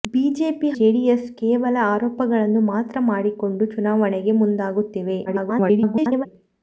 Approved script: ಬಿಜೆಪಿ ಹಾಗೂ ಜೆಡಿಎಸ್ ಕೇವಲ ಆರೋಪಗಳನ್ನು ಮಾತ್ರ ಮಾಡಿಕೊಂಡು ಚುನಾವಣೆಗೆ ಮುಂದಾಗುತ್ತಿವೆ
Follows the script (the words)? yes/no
no